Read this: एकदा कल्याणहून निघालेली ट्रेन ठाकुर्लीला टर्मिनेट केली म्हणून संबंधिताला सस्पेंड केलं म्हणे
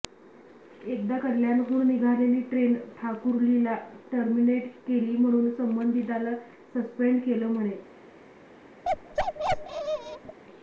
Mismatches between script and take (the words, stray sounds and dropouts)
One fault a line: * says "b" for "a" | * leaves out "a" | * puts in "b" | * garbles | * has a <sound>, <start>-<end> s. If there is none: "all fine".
* has a bark, 8.8-10.4 s